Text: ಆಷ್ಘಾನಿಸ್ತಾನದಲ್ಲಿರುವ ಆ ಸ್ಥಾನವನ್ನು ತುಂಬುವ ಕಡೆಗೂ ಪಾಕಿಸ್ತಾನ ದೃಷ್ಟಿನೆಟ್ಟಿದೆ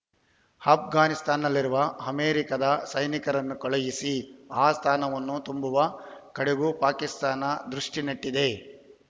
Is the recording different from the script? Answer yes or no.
yes